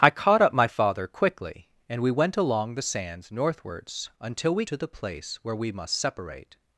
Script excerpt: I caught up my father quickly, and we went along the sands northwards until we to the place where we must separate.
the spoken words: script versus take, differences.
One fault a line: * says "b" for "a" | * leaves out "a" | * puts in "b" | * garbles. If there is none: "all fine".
all fine